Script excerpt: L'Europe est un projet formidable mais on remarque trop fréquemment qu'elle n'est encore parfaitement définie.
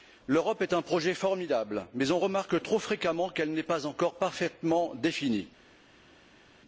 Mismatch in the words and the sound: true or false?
true